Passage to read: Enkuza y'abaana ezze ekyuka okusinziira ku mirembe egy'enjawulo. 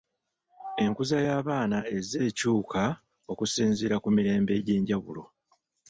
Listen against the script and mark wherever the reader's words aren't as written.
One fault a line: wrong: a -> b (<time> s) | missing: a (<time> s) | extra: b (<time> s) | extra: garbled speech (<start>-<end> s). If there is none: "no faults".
no faults